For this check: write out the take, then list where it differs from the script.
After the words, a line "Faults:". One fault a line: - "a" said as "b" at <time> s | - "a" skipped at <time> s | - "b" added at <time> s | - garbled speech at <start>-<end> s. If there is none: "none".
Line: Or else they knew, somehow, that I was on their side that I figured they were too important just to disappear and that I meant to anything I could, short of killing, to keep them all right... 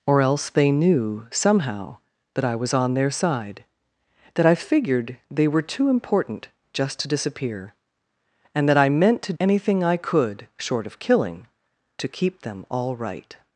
Or else they knew, somehow, that I was on their side that I figured they were too important just to disappear and that I meant to anything I could, short of killing, to keep them all right...
Faults:
none